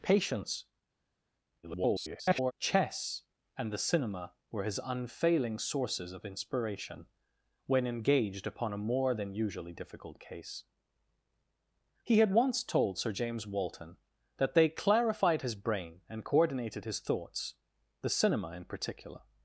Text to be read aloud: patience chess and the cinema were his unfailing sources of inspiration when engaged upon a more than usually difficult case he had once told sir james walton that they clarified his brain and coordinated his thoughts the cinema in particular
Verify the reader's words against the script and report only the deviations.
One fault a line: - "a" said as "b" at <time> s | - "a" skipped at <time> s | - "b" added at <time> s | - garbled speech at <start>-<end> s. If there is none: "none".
- garbled speech at 1.6-2.5 s